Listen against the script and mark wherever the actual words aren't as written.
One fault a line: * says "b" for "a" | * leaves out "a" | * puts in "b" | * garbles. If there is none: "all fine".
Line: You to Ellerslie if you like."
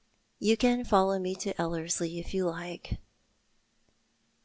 * puts in "can follow me"